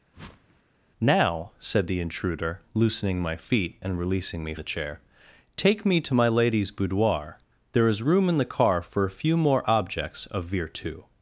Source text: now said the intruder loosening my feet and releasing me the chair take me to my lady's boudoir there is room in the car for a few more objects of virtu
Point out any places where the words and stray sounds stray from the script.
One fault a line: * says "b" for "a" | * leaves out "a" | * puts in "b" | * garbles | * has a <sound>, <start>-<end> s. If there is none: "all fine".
* has a whoosh, 0.1-0.6 s